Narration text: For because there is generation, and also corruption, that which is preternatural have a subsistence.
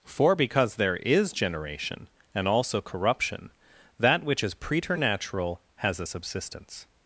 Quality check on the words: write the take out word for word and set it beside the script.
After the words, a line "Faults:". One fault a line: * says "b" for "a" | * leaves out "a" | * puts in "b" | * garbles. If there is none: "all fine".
For because there is generation, and also corruption, that which is preternatural has a subsistence.
Faults:
* says "has" for "have"